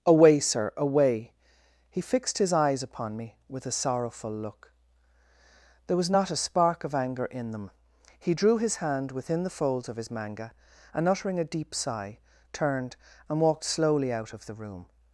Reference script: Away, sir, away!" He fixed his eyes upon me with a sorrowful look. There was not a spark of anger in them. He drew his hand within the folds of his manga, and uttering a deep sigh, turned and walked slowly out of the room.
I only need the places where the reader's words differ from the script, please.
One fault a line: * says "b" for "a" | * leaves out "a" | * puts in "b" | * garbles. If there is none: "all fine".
all fine